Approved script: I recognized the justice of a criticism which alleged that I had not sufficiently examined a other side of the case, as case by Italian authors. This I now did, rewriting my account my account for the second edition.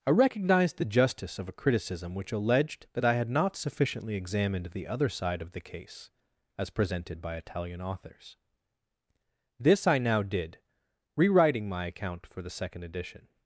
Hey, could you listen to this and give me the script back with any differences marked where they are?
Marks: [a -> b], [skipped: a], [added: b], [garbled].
I recognized the justice of a criticism which alleged that I had not sufficiently examined [a -> the] other side of the case, as [case -> presented] by Italian authors. This I now did, rewriting my account [skipped: my account] for the second edition.